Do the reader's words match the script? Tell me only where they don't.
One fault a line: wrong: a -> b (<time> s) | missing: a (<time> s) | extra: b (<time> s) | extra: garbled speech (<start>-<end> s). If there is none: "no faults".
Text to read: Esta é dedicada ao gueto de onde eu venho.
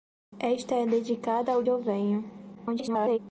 missing: gueto de onde (1.6 s)
extra: garbled speech (2.5-3.2 s)